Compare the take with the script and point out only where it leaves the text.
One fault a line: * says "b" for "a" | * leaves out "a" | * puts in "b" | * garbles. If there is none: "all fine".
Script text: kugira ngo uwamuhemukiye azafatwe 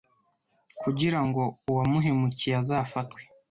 all fine